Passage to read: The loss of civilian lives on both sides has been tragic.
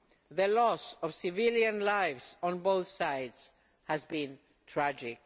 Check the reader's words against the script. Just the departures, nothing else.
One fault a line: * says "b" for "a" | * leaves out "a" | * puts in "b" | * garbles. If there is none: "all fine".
all fine